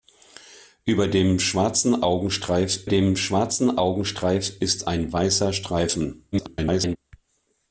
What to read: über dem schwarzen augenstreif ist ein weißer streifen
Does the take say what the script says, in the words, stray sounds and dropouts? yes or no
no